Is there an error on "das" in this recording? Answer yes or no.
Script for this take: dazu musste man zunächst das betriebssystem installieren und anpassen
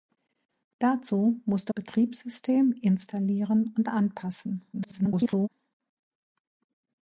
yes